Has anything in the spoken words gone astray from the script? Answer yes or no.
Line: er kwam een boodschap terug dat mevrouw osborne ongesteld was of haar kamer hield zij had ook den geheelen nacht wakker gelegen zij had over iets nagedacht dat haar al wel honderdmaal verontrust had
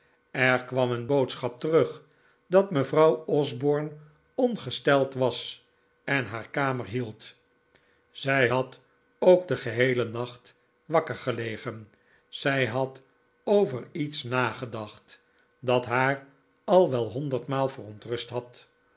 yes